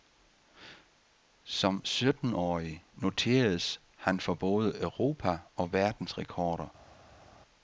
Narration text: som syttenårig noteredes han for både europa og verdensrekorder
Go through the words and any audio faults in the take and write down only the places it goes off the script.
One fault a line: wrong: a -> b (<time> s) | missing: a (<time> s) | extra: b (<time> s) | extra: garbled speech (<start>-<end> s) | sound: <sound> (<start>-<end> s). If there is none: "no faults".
no faults